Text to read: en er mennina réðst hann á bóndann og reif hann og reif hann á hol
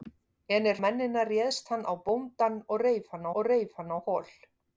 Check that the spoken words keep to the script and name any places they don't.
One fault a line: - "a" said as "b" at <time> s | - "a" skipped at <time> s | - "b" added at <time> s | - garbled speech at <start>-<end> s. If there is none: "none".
none